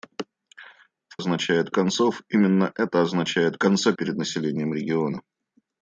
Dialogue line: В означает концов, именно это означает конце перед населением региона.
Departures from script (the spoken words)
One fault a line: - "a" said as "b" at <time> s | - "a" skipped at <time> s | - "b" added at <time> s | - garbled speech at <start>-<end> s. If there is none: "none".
none